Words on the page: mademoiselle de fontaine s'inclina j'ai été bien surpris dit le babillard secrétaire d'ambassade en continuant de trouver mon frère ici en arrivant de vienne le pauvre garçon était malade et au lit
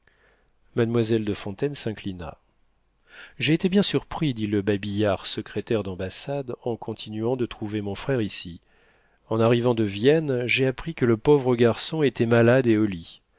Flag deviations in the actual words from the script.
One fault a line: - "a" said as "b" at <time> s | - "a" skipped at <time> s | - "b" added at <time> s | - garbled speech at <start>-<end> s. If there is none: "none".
- "j'ai appris que" added at 10.5 s